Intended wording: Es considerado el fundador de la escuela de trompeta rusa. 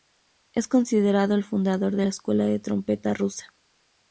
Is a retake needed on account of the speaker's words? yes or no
no